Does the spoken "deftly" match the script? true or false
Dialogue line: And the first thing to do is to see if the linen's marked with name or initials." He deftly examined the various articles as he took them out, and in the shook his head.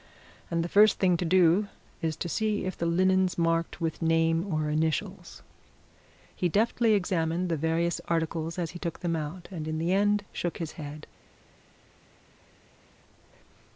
true